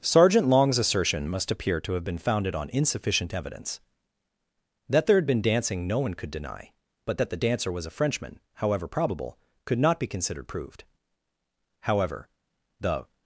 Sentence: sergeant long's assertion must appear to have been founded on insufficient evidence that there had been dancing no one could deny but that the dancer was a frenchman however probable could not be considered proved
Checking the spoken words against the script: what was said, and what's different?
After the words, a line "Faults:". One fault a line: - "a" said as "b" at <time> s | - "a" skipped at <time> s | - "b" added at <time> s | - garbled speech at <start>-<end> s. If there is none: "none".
sergeant long's assertion must appear to have been founded on insufficient evidence that there had been dancing no one could deny but that the dancer was a frenchman however probable could not be considered proved however the
Faults:
- "however the" added at 11.8 s